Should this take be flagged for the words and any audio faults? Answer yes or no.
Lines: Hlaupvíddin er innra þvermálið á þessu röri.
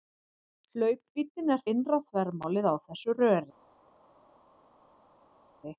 no